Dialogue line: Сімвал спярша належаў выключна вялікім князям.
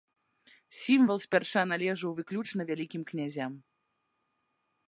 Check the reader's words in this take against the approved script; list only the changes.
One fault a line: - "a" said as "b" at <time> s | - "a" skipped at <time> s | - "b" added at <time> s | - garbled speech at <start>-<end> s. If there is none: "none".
none